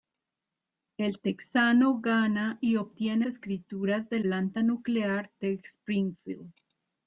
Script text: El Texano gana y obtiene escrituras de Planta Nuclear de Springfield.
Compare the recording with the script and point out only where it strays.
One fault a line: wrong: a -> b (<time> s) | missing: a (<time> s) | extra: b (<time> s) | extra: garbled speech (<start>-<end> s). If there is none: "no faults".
no faults